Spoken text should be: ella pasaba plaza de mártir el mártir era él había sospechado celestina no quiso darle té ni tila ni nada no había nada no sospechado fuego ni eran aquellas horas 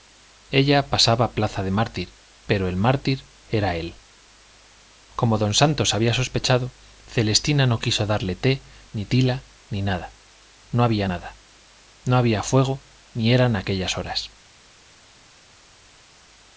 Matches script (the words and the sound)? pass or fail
fail